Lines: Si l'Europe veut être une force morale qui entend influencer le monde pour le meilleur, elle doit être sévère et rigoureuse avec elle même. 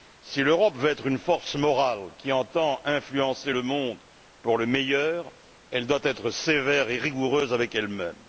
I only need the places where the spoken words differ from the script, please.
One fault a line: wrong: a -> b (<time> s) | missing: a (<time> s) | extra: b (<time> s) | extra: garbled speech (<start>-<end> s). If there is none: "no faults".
no faults